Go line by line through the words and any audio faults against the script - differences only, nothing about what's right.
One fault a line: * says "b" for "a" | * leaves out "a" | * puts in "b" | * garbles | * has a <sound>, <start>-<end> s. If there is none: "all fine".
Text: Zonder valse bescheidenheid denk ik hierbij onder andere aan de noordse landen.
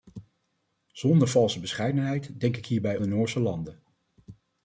* leaves out "onder andere aan"